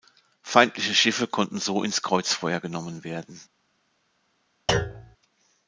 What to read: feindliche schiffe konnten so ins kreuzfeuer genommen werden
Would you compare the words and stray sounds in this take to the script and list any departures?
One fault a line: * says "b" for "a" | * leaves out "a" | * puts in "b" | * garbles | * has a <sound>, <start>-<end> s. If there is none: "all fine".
* has a thud, 4.7-5.2 s